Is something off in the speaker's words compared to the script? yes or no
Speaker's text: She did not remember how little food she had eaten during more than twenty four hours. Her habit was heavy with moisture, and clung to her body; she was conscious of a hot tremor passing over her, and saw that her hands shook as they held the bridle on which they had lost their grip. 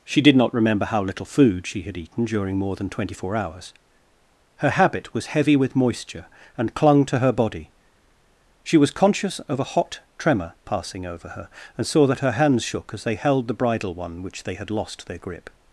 yes